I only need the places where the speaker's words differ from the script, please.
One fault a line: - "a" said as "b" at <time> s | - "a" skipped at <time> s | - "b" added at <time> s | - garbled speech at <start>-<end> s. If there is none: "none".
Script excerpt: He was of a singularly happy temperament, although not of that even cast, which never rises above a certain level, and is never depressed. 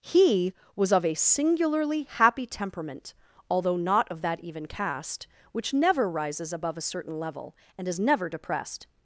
none